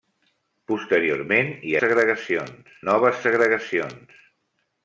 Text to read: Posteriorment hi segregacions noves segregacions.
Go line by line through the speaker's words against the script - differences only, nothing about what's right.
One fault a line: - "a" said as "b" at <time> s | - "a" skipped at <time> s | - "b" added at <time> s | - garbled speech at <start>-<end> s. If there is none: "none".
none